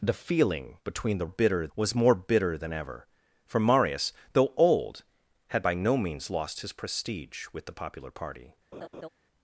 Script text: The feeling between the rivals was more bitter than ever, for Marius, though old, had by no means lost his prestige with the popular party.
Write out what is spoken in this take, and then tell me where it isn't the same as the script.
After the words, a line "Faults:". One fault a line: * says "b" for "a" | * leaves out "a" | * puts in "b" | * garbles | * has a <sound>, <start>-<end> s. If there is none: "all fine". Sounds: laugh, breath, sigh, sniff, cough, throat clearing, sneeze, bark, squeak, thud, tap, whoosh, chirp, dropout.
The feeling between the bitter was more bitter than ever, for Marius, though old, had by no means lost his prestige with the popular party.
Faults:
* says "bitter" for "rivals"
* has a laugh, 8.7-9.1 s